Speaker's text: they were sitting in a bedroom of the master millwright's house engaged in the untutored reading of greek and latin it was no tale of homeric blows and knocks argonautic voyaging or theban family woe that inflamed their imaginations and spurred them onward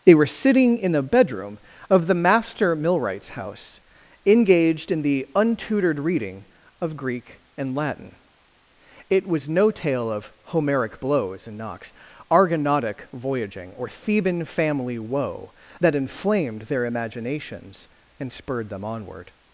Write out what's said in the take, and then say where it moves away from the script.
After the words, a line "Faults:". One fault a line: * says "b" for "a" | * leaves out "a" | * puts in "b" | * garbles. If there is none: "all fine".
they were sitting in a bedroom of the master millwright's house engaged in the untutored reading of greek and latin it was no tale of homeric blows and knocks argonautic voyaging or theban family woe that inflamed their imaginations and spurred them onward
Faults:
all fine